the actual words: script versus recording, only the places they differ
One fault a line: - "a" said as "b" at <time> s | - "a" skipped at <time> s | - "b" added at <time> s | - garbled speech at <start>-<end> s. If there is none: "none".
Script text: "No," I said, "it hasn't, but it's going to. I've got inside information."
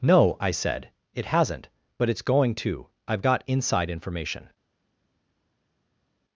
none